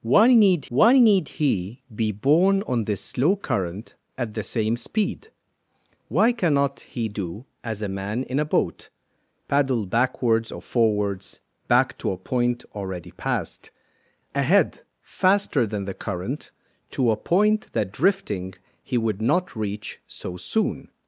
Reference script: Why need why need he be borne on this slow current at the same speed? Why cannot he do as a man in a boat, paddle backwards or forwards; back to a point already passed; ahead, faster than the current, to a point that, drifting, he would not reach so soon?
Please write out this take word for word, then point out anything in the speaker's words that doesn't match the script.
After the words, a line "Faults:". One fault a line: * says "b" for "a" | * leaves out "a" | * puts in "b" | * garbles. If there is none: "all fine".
Why need why need he be borne on this slow current at the same speed? Why cannot he do as a man in a boat, paddle backwards or forwards; back to a point already passed; ahead, faster than the current, to a point that, drifting, he would not reach so soon?
Faults:
all fine